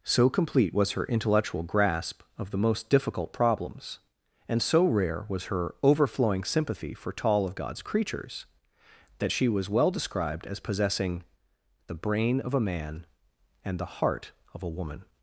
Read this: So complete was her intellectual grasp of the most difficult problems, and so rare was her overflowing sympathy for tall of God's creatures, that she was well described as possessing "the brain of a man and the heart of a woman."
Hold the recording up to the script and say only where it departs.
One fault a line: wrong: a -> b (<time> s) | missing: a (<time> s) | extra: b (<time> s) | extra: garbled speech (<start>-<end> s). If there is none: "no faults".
no faults